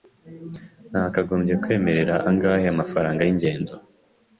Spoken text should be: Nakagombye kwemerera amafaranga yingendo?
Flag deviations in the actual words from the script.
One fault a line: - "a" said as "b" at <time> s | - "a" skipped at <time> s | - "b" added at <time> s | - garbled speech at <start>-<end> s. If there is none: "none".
- "angahe" added at 2.3 s